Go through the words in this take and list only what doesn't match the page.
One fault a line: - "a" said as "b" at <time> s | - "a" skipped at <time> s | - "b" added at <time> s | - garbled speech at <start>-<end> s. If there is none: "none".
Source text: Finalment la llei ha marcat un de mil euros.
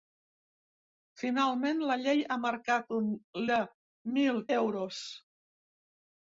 none